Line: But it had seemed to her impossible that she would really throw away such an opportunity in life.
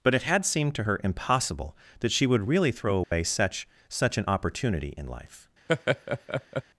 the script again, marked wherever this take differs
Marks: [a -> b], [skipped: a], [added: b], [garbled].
But it had seemed to her impossible that she would really throw away such [added: such] an opportunity in life.